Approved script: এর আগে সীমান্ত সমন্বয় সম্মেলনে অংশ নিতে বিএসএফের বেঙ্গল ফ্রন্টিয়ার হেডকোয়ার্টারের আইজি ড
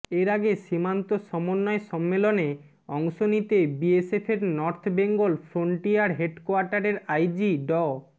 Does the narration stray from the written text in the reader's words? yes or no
yes